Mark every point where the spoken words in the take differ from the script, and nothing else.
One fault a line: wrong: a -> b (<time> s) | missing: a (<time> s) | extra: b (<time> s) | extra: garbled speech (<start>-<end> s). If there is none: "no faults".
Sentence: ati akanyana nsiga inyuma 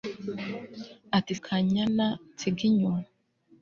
no faults